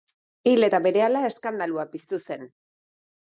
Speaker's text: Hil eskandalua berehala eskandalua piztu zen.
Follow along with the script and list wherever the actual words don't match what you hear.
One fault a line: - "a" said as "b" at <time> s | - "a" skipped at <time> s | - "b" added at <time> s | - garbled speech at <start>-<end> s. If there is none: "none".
- "eskandalua" said as "eta" at 0.6 s